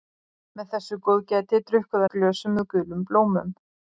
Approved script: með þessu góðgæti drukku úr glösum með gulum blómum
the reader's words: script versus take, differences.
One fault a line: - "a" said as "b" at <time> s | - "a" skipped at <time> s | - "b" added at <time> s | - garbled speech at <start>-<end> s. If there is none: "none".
none